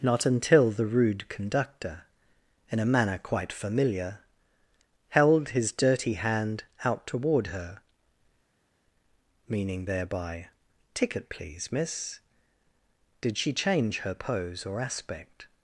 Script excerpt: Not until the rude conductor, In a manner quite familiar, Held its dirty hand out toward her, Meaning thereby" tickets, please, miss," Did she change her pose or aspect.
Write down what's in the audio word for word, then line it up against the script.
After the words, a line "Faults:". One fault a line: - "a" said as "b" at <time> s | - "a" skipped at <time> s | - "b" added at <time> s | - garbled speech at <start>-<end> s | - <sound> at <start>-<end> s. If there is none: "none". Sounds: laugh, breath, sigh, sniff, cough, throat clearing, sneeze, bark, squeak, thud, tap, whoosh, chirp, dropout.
Not until the rude conductor, In a manner quite familiar, Held his dirty hand out toward her, Meaning thereby" ticket, please, miss," Did she change her pose or aspect.
Faults:
- "its" said as "his" at 5.5 s
- "tickets" said as "ticket" at 10.9 s